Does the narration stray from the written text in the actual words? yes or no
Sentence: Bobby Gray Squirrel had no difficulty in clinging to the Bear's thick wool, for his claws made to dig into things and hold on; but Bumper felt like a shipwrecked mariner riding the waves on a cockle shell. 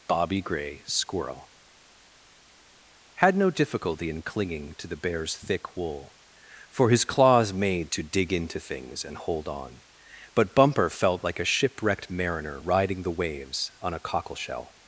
no